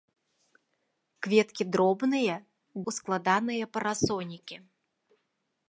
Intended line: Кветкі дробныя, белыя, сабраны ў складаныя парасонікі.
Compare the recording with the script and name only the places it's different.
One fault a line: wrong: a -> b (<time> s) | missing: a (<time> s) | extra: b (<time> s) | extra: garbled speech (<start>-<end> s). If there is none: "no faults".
missing: белыя сабраны (2.4 s)